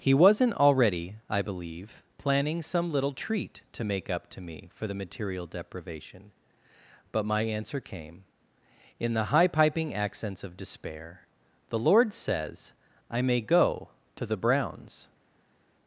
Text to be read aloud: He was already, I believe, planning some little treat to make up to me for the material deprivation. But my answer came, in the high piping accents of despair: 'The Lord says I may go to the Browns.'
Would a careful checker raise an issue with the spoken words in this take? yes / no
yes